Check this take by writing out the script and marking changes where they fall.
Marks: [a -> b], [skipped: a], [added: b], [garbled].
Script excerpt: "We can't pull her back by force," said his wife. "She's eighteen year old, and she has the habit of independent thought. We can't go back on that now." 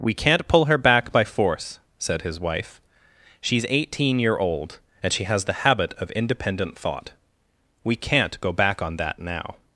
"We can't pull her back by force," said his wife. "She's eighteen year old, and she has the habit of independent thought. We can't go back on that now."